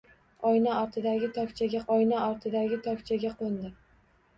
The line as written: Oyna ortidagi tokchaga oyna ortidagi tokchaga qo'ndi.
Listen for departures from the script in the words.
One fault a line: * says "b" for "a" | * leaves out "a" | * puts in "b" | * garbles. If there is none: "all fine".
all fine